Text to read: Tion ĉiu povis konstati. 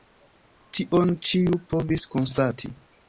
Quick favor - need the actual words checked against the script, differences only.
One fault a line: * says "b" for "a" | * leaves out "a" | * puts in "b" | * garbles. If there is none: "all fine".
all fine